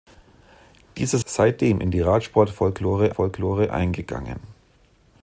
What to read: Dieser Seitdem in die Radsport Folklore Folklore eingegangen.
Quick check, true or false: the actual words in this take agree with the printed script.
true